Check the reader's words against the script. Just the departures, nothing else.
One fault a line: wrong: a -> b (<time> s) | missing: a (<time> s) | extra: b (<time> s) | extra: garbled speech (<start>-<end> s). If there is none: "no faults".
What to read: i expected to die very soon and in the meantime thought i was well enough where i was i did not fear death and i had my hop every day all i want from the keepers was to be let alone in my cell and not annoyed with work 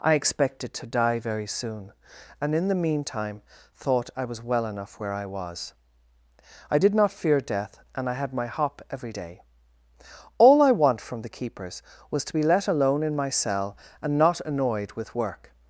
no faults